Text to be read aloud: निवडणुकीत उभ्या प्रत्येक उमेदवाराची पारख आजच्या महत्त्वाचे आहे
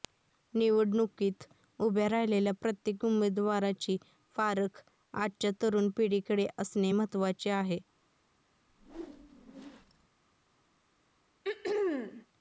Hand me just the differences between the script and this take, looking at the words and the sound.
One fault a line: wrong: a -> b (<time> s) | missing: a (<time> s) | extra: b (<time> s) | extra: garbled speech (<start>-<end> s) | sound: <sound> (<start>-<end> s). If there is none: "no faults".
extra: राहिलेल्या (2.1 s)
extra: तरुण पिढीकडे असणे (5.6 s)
sound: whoosh (8.7-10.1 s)
sound: throat clearing (11.4-12.3 s)